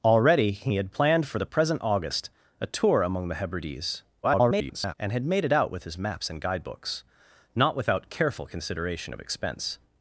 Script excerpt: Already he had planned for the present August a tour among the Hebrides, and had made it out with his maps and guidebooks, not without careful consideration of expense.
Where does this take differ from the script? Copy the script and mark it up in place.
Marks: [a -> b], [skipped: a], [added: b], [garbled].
Already he had planned for the present August a tour among the Hebrides, [garbled] and had made it out with his maps and guidebooks, not without careful consideration of expense.